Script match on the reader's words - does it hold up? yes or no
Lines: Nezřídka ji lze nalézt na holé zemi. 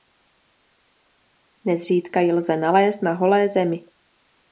yes